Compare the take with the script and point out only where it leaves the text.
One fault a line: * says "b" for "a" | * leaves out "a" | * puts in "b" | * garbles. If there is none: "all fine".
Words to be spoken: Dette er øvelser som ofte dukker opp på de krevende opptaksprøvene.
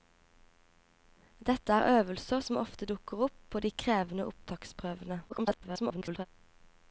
* garbles